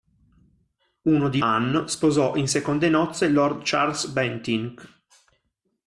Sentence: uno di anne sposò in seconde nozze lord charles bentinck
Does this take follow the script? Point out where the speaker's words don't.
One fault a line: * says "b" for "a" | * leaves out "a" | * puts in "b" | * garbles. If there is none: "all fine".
all fine